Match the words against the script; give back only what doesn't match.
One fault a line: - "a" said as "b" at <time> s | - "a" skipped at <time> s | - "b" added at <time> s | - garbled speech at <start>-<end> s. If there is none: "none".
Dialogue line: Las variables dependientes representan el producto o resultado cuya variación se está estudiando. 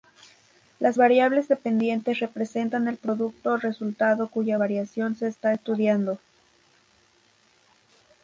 none